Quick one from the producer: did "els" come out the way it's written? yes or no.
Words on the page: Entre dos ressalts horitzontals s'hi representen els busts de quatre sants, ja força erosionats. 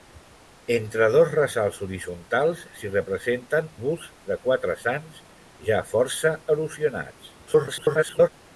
no